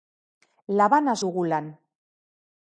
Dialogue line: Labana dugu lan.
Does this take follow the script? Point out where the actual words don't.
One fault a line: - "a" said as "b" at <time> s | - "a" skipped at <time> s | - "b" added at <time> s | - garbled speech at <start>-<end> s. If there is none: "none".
none